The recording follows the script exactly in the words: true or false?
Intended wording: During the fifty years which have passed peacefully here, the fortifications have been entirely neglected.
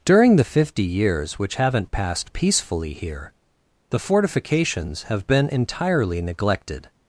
false